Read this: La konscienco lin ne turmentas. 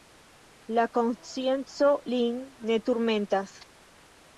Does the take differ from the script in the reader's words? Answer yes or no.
no